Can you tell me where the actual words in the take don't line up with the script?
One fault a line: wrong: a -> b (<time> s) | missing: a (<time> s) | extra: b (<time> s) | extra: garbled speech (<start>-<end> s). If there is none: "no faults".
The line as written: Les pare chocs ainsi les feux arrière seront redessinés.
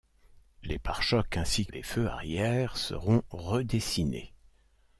no faults